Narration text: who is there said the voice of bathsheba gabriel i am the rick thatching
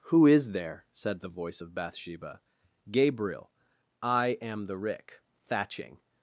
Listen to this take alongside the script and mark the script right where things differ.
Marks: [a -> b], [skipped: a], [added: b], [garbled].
who is there said the voice of bathsheba gabriel i am the rick thatching